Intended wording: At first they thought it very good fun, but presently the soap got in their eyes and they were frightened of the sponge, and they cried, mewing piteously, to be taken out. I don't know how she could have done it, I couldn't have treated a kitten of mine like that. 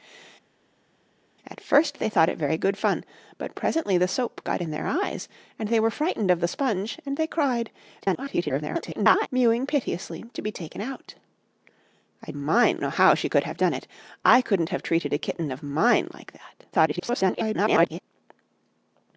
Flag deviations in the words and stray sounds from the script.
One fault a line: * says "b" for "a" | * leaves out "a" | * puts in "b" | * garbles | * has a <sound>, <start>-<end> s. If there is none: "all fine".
* garbles
* says "mine" for "don't"
* garbles